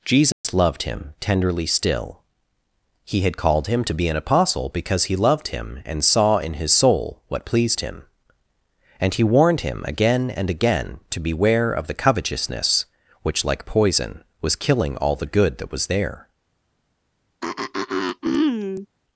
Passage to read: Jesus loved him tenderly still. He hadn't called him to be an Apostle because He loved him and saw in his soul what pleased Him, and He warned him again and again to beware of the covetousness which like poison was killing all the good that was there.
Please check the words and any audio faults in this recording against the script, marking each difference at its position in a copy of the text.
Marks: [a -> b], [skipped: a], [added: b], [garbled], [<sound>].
Jesus [dropout] loved him tenderly still. He [hadn't -> had] called him to be an Apostle because He loved him and saw in his soul what pleased Him, and He warned him again and again to beware of the covetousness which like poison was killing all the good that was there. [throat clearing]